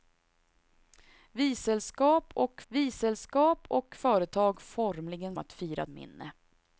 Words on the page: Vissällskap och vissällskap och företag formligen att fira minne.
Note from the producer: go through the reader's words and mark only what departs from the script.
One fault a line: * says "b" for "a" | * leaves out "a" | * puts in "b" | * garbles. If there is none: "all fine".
all fine